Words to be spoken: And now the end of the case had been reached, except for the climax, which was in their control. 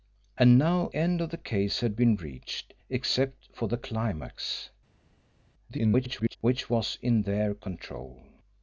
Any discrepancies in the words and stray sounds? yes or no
yes